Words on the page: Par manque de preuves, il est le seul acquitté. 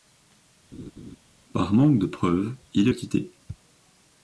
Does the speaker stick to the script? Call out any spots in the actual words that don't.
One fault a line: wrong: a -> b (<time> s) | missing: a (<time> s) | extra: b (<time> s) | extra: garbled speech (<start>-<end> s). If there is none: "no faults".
missing: le seul (2.9 s)